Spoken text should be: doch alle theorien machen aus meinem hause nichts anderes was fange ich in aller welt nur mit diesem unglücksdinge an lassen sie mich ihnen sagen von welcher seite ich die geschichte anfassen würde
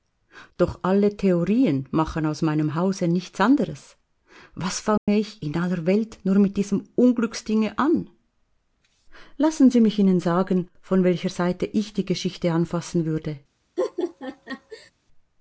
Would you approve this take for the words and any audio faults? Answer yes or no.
no